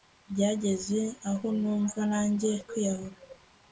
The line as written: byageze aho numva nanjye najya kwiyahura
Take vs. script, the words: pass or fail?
fail